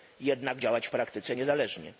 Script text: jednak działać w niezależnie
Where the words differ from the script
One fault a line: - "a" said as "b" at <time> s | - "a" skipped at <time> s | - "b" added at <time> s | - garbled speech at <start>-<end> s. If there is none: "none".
- "praktyce" added at 0.9 s